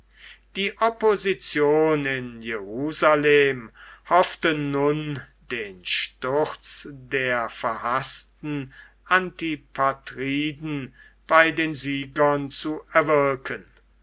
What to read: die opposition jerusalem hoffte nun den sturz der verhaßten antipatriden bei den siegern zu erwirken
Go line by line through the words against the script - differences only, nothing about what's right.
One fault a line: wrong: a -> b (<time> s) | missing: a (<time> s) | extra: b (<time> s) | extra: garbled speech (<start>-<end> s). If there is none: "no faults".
extra: in (2.1 s)